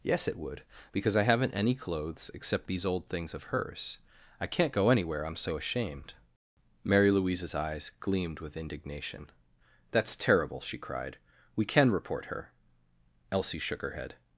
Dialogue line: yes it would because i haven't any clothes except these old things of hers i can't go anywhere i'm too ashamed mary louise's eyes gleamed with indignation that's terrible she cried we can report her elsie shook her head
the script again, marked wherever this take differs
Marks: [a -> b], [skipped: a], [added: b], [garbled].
yes it would because i haven't any clothes except these old things of hers i can't go anywhere i'm [too -> so] ashamed mary louise's eyes gleamed with indignation that's terrible she cried we can report her elsie shook her head